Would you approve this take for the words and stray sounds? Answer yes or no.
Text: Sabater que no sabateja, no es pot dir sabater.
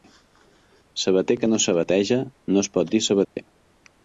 no